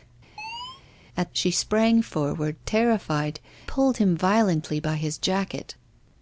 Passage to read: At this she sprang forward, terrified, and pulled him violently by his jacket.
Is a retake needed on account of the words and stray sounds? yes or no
yes